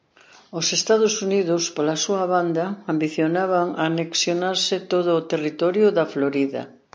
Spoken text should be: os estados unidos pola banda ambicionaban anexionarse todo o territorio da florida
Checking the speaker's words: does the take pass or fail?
fail